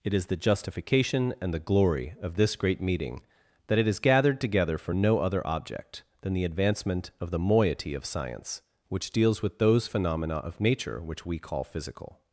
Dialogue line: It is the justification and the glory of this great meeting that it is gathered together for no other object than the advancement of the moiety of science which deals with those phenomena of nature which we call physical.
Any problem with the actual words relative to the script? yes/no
no